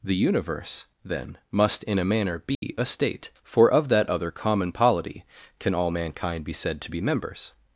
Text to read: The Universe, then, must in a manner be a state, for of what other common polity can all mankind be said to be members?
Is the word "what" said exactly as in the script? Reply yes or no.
no